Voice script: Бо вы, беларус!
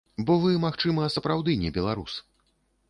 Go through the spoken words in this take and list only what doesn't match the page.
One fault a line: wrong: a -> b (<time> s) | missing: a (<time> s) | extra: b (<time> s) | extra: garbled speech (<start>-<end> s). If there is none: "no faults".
extra: магчыма сапраўды не (0.6 s)